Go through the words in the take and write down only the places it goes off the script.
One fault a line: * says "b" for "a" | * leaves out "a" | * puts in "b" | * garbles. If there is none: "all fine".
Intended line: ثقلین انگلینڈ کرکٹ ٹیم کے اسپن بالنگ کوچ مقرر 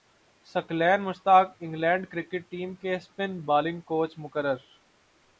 * puts in "مشتاق"